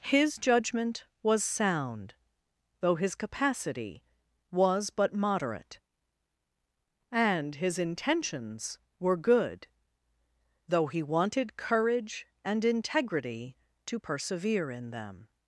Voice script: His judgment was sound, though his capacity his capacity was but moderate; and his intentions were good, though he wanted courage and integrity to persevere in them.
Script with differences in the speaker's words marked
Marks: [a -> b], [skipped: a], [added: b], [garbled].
His judgment was sound, though his capacity [skipped: his capacity] was but moderate; and his intentions were good, though he wanted courage and integrity to persevere in them.